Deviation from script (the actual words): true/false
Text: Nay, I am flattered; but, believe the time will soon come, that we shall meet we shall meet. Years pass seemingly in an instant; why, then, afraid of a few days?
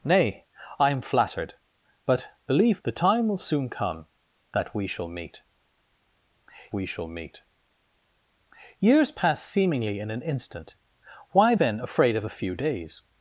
false